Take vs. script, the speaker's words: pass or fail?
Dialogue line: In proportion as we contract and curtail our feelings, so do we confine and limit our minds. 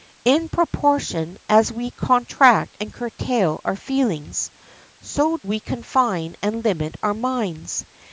fail